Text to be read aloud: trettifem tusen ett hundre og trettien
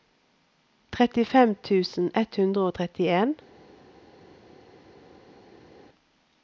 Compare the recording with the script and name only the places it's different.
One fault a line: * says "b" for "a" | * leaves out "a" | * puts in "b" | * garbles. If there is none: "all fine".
all fine